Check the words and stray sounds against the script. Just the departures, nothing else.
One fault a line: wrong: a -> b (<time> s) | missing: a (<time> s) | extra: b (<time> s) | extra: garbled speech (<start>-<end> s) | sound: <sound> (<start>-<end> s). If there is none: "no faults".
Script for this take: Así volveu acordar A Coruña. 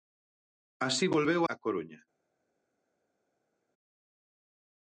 missing: acordar (1.4 s)